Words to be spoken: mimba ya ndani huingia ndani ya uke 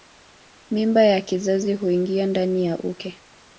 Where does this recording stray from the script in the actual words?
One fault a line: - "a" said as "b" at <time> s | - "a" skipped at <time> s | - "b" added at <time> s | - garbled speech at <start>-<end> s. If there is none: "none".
- "ndani" said as "kizazi" at 1.2 s